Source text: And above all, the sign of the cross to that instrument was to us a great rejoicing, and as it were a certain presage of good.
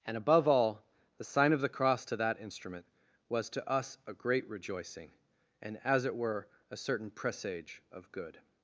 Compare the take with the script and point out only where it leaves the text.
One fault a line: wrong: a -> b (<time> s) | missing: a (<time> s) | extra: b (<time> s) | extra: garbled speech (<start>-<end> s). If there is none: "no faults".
no faults